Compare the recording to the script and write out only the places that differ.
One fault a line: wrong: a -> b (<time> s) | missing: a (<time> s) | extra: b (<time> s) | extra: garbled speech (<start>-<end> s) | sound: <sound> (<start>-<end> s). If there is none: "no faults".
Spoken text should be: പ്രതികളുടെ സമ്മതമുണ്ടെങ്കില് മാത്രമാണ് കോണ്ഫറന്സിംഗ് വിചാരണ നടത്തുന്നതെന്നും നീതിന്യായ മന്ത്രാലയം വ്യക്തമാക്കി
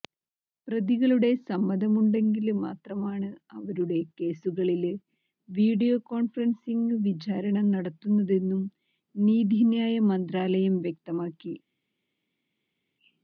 extra: അവരുടെ കേസുകളില് വീഡിയോ (3.5 s)